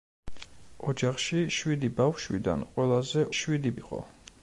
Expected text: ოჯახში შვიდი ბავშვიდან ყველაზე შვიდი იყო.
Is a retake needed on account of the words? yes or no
no